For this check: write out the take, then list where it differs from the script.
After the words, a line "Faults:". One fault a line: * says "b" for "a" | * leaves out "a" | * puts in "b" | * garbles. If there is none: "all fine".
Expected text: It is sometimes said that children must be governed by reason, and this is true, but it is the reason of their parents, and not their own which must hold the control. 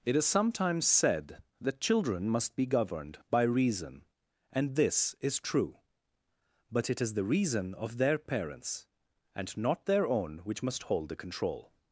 It is sometimes said that children must be governed by reason, and this is true, but it is the reason of their parents, and not their own which must hold the control.
Faults:
all fine